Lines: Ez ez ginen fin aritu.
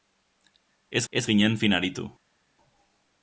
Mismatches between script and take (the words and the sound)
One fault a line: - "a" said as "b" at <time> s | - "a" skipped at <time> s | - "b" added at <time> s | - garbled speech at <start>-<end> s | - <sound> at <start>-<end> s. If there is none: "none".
none